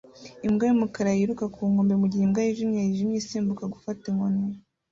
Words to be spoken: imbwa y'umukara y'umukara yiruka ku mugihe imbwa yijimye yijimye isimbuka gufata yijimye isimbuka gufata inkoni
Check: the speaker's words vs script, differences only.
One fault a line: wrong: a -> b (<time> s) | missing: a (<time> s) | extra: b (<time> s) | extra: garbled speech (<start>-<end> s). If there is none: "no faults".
missing: y'umukara (1.1 s)
extra: nkombe (1.7 s)
missing: yijimye isimbuka gufata (4.0 s)